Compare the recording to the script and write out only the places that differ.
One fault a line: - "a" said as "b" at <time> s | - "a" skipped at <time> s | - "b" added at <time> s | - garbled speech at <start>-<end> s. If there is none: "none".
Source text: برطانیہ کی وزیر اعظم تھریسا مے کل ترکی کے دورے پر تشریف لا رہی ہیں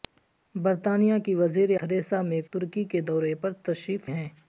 - "اعظم" skipped at 1.8 s
- "کل" skipped at 2.4 s
- "لا رہی" skipped at 4.1 s